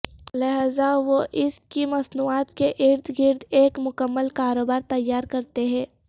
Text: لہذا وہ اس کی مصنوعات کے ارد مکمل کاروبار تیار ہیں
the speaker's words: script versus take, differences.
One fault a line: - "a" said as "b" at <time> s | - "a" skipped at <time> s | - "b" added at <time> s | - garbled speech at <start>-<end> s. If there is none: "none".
- "گرد ایک" added at 3.2 s
- "کرتے" added at 5.3 s